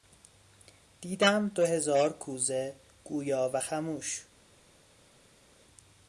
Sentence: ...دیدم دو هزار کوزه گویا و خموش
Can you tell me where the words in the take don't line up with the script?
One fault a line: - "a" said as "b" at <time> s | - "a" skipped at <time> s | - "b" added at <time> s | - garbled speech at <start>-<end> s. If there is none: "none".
none